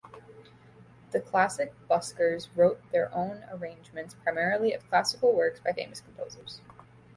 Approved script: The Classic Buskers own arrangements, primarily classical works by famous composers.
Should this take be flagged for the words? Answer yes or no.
yes